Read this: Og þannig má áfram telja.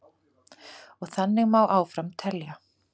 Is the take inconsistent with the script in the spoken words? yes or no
no